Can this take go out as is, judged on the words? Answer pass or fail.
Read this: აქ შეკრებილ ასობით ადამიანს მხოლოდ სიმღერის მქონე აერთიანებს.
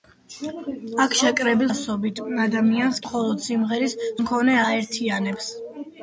pass